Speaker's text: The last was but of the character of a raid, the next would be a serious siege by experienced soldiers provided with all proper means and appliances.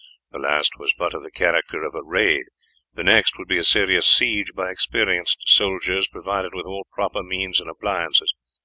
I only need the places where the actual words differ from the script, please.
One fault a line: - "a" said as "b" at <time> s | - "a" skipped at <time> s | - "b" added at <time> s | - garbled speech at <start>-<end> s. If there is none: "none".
none